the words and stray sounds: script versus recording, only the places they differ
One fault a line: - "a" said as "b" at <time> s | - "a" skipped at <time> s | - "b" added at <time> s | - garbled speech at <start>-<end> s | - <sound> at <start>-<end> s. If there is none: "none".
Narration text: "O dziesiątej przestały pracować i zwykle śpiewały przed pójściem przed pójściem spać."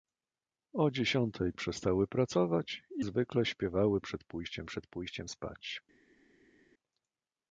none